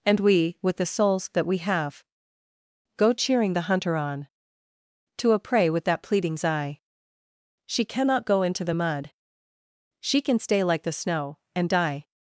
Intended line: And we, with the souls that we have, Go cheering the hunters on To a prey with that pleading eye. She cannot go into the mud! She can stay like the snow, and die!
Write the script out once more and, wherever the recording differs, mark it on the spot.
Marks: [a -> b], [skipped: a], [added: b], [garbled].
And we, with the souls that we have, Go cheering the [hunters -> hunter] on To a prey with that [pleading -> pleadings] eye. She cannot go into the mud! She can stay like the snow, and die!